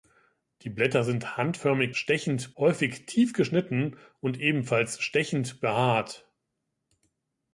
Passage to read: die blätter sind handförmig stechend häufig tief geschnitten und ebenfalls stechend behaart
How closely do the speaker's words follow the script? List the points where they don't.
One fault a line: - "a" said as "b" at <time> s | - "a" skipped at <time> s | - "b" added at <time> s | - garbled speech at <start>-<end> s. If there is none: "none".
none